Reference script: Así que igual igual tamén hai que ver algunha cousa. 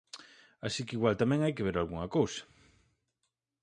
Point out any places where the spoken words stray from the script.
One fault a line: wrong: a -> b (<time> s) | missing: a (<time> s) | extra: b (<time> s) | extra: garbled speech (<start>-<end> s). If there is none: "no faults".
missing: igual (1.1 s)